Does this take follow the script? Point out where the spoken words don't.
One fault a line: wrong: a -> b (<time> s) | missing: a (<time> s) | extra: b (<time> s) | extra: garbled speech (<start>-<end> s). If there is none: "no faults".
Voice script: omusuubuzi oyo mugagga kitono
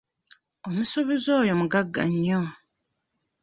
wrong: kitono -> nnyo (2.1 s)